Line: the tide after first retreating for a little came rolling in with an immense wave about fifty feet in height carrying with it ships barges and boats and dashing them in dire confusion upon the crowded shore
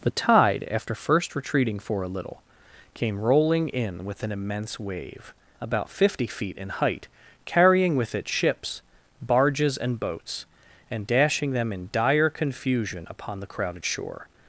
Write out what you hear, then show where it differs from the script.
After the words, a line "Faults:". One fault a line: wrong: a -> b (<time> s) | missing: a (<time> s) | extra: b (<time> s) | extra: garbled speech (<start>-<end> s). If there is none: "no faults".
the tide after first retreating for a little came rolling in with an immense wave about fifty feet in height carrying with it ships barges and boats and dashing them in dire confusion upon the crowded shore
Faults:
no faults